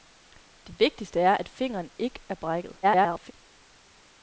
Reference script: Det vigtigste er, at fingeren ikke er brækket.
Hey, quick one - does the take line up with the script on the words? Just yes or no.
no